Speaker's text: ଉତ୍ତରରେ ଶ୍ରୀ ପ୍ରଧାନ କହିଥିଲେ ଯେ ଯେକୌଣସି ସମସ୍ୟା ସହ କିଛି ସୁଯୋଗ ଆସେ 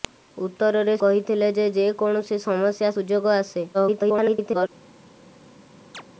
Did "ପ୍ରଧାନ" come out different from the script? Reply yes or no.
yes